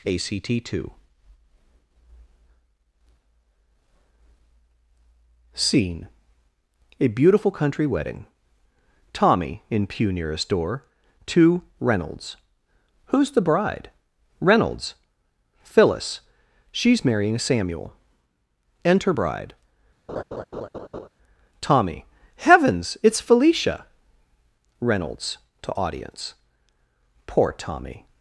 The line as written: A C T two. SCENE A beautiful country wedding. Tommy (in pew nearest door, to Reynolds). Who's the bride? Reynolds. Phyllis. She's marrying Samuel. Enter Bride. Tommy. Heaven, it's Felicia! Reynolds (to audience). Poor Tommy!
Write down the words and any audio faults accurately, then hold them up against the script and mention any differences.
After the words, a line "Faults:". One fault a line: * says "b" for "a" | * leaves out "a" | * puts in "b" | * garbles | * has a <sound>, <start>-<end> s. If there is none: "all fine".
A C T two. SCENE A beautiful country wedding. Tommy (in pew nearest door, to Reynolds). Who's the bride? Reynolds. Phyllis. She's marrying Samuel. Enter Bride. Tommy. Heavens, it's Felicia! Reynolds (to audience). Poor Tommy!
Faults:
* has a laugh, 20.1-21.1 s
* says "Heavens" for "Heaven"